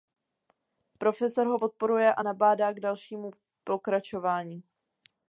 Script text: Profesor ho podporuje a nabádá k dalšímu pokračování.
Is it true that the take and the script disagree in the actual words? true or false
false